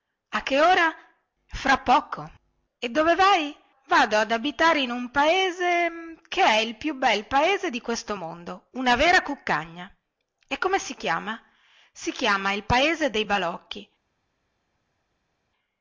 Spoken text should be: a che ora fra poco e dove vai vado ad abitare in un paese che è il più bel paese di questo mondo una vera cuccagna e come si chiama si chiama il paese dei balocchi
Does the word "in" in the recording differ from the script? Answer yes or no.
no